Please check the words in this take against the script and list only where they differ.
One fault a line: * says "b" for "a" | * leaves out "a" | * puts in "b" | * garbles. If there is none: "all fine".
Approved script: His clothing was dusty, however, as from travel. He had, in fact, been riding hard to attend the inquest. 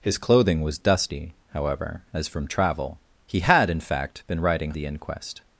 * leaves out "hard to attend"